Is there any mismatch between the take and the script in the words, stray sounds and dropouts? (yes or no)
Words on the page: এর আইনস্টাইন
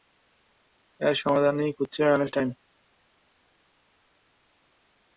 yes